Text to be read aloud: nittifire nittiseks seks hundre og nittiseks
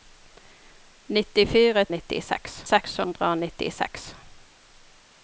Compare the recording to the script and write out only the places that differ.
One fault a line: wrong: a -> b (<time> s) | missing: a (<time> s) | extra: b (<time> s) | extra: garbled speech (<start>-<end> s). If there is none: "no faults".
no faults